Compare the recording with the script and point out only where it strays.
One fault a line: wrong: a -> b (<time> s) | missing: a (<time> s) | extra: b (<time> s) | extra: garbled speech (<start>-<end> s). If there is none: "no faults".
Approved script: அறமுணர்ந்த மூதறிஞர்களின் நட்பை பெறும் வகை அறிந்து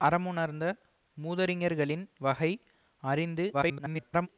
missing: நட்பை பெறும் (2.0 s)
extra: garbled speech (3.5-4.3 s)